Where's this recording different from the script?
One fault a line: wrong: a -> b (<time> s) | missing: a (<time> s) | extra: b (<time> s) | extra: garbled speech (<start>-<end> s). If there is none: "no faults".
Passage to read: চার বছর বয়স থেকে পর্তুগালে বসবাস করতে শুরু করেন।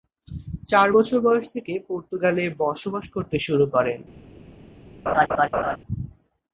no faults